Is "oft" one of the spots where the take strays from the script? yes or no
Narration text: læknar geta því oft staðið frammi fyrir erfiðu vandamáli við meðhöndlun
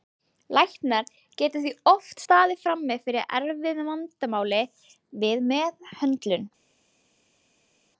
no